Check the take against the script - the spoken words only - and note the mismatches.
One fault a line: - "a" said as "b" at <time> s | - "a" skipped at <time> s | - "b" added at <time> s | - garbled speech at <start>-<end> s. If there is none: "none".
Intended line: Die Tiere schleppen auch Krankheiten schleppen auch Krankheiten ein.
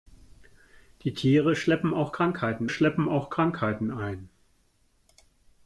none